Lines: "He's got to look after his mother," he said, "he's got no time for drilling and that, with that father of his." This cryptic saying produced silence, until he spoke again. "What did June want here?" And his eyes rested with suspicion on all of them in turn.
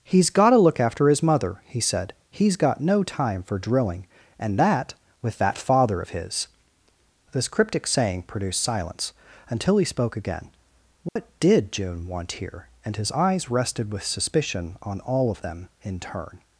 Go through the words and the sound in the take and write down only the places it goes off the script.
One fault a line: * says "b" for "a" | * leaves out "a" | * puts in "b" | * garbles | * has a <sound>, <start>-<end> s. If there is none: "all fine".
* has a dropout, 11.1-11.2 s